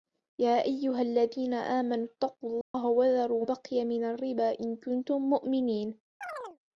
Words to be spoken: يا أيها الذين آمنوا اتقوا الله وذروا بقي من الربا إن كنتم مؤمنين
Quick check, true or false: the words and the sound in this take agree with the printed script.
false